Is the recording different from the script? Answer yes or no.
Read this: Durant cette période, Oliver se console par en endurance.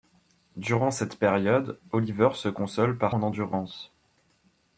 no